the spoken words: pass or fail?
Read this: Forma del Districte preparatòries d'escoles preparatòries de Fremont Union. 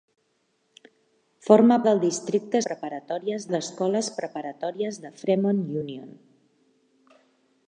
pass